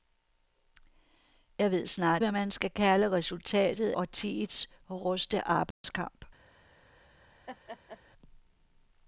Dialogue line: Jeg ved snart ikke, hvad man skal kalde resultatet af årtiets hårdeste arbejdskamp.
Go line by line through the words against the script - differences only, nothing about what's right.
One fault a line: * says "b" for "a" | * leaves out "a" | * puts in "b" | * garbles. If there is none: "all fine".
* leaves out "ikke"
* leaves out "af"